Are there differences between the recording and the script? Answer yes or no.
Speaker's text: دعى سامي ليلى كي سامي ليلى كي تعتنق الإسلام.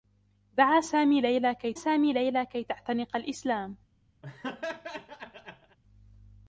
no